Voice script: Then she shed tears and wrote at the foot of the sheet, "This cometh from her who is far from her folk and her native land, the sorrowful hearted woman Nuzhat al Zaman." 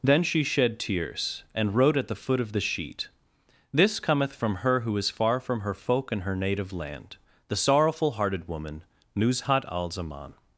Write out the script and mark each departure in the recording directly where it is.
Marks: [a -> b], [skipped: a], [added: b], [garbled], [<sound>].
Then she shed tears and wrote at the foot of the sheet, "This cometh from her who is far from her folk and her native land, the sorrowful hearted woman Nuzhat al Zaman."